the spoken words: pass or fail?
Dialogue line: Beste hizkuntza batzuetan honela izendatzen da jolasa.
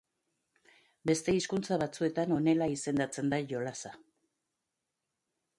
pass